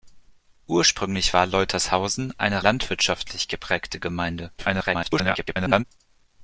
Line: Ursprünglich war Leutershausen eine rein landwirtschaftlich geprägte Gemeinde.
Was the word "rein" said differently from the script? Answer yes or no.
yes